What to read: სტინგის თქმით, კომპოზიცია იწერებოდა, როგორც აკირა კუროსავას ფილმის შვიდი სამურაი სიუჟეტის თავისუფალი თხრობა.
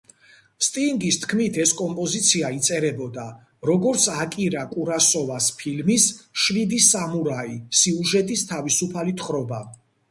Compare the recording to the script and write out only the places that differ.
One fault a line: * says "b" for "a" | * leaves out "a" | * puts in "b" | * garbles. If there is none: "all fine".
* puts in "ეს"